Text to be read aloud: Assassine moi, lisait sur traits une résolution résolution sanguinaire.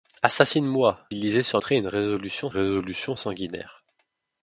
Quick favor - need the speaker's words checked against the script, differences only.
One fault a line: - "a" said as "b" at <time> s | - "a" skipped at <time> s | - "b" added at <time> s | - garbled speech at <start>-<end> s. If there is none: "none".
none